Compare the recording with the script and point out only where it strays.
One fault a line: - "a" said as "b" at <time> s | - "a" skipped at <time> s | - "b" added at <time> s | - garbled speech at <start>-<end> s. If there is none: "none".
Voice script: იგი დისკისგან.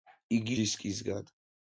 none